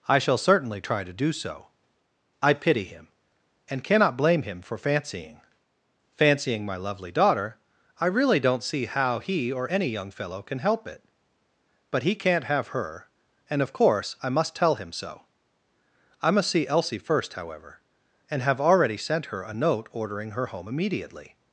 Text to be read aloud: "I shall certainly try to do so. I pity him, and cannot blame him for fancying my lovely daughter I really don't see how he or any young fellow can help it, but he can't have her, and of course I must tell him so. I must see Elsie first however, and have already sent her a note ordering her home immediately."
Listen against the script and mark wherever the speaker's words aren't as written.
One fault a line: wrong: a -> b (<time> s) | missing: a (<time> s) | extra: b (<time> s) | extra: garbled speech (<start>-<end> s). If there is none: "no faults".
extra: fancying (6.1 s)